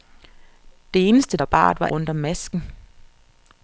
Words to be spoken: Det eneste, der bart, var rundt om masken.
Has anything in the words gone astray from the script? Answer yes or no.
no